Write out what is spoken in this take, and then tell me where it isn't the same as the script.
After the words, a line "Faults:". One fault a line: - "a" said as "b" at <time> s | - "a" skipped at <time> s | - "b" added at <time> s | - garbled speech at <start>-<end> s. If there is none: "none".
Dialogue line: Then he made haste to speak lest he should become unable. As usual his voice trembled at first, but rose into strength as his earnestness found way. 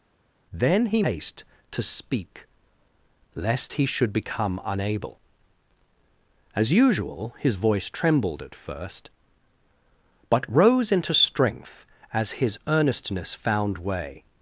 Then he haste to speak lest he should become unable. As usual his voice trembled at first, but rose into strength as his earnestness found way.
Faults:
- "made" skipped at 1.0 s